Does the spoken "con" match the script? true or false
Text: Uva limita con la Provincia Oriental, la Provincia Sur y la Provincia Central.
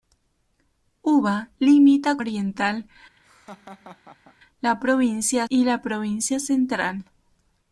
false